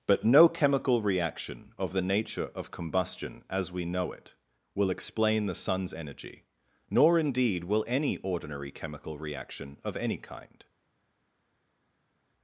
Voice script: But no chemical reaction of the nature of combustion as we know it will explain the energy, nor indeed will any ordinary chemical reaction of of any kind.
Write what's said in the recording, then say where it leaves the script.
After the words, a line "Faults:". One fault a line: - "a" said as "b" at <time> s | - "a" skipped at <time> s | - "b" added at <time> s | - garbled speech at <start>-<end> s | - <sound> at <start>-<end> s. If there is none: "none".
But no chemical reaction of the nature of combustion as we know it will explain the sun's energy, nor indeed will any ordinary chemical reaction of any kind.
Faults:
- "sun's" added at 5.5 s
- "of" skipped at 10.0 s